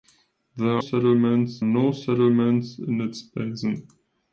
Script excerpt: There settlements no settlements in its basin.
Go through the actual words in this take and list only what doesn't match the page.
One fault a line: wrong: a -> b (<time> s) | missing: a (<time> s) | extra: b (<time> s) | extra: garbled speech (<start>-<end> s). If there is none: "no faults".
no faults